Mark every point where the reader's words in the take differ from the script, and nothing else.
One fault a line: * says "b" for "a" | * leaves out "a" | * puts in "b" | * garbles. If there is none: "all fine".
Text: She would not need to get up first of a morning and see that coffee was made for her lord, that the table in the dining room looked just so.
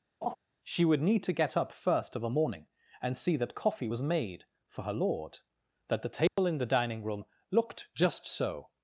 * leaves out "not"